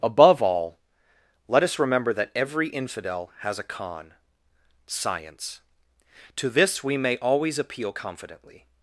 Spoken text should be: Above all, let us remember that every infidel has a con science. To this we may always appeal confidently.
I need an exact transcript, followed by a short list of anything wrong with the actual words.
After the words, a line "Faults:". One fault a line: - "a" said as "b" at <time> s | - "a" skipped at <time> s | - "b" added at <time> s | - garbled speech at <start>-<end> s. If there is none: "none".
Above all, let us remember that every infidel has a con science. To this we may always appeal confidently.
Faults:
none